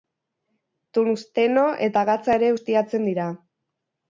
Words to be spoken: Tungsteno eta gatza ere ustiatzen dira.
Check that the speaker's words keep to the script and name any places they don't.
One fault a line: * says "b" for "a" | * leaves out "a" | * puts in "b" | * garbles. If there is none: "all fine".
all fine